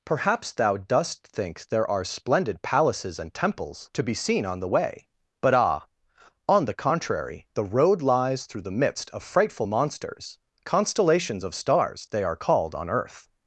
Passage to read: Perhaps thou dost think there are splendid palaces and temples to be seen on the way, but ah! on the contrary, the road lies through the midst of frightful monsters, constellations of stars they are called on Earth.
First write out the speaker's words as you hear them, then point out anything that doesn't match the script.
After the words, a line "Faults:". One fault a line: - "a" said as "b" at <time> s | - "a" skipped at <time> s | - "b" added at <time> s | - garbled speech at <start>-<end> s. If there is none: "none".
Perhaps thou dost think there are splendid palaces and temples to be seen on the way, but ah! on the contrary, the road lies through the midst of frightful monsters, constellations of stars they are called on Earth.
Faults:
none